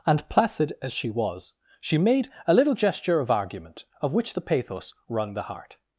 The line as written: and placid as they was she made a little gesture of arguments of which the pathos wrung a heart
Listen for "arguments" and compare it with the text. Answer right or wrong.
wrong